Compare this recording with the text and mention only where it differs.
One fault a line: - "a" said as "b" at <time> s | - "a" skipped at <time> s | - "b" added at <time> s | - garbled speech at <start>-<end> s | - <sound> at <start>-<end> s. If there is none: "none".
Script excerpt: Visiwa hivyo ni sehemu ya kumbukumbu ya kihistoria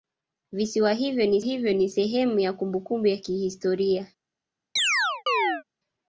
- "hivyo ni" added at 1.4 s
- chirp at 4.8-5.6 s